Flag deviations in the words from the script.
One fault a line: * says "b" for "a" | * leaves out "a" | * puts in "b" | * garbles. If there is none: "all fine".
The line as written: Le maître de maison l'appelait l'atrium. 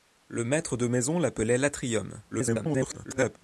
* garbles